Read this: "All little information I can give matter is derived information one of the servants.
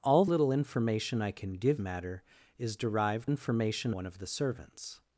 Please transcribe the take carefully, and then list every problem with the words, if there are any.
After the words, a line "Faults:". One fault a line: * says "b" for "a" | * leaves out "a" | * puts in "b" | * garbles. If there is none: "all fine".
"All little information I can give matter is derived information one of the servants.
Faults:
all fine